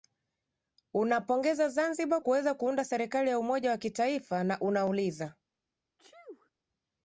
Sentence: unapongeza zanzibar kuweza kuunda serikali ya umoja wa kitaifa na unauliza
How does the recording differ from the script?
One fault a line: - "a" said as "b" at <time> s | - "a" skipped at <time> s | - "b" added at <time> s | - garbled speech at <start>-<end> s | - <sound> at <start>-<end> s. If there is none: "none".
- sneeze at 6.0-6.5 s